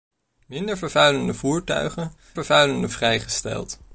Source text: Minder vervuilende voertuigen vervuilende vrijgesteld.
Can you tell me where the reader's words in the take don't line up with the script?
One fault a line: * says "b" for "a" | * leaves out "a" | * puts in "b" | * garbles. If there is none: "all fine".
all fine